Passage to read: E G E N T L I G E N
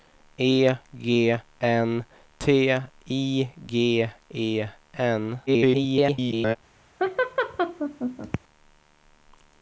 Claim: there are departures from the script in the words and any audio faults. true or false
true